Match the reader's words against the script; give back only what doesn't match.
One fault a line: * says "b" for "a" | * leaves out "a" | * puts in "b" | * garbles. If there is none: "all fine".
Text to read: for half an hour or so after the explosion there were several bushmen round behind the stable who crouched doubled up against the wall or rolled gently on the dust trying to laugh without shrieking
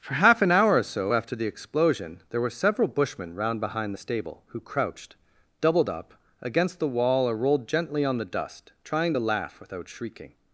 all fine